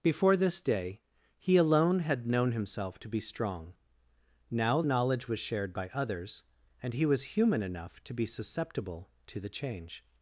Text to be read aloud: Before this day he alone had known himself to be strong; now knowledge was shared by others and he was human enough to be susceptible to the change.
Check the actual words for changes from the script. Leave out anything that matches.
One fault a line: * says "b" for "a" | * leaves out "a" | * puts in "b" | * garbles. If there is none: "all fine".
all fine